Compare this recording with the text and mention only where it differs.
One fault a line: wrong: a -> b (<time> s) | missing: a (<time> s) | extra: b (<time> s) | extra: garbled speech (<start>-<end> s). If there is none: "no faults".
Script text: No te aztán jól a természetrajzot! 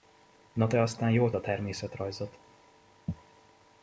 no faults